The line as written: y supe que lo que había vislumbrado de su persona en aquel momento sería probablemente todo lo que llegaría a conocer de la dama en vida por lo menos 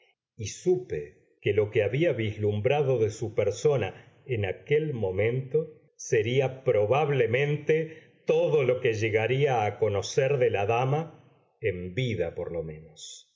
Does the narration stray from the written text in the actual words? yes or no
no